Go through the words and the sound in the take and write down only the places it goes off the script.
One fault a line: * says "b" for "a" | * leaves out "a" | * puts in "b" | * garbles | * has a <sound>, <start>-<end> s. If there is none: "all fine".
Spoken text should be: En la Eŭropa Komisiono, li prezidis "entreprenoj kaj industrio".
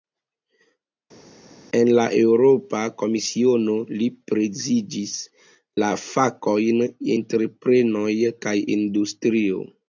* puts in "la fakojn"